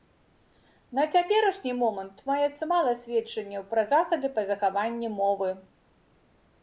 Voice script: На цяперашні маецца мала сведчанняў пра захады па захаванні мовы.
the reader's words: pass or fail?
fail